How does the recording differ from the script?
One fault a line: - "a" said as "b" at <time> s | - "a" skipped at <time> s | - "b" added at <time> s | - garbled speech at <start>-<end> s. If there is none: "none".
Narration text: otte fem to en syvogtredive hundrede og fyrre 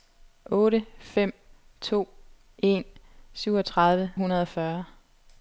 none